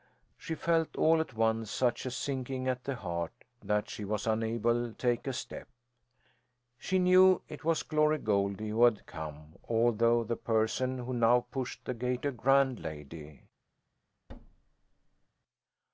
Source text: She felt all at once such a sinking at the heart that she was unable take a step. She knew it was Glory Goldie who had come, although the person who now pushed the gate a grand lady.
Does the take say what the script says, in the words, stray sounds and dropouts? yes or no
no